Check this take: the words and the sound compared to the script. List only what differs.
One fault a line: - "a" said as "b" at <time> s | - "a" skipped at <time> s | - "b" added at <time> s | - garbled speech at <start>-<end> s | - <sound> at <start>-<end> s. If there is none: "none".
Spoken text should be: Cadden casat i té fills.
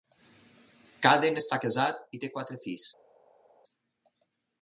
- "està" added at 1.4 s
- "quatre" added at 2.3 s